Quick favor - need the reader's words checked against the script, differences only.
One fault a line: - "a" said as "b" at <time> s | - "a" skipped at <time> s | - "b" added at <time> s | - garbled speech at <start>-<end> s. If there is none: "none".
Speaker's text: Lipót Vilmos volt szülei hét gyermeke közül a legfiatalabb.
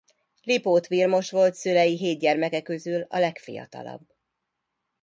none